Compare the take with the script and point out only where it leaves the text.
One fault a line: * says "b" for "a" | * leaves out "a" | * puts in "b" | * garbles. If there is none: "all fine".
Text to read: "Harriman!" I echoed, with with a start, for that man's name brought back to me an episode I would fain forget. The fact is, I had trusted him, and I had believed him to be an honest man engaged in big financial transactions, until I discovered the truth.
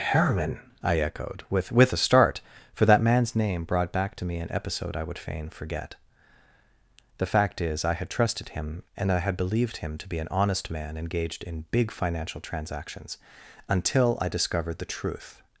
all fine